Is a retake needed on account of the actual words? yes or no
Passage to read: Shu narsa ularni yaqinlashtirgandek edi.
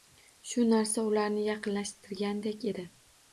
no